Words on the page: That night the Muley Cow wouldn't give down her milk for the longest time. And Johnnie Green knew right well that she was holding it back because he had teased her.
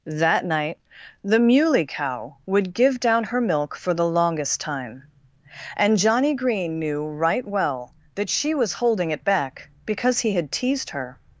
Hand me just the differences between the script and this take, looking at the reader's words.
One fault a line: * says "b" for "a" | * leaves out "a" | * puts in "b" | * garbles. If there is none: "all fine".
* says "would" for "wouldn't"